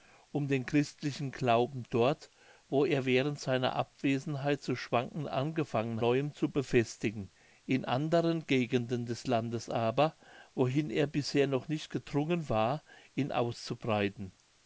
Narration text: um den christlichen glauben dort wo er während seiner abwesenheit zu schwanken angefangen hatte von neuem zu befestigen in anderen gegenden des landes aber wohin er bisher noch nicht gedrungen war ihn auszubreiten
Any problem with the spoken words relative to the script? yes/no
yes